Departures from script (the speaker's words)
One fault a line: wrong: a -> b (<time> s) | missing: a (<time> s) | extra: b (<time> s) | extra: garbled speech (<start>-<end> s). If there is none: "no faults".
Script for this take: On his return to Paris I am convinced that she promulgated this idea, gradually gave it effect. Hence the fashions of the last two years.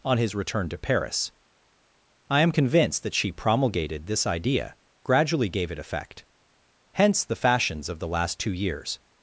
no faults